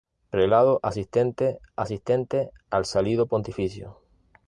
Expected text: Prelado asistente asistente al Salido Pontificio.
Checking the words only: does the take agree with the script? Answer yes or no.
yes